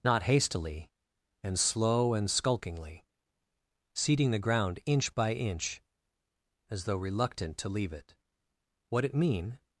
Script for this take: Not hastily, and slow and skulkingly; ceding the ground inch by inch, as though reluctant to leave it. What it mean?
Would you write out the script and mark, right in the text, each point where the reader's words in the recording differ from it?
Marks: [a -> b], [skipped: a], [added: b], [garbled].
Not hastily, and slow and skulkingly; ceding the ground inch by inch, as though reluctant to leave it. What it mean?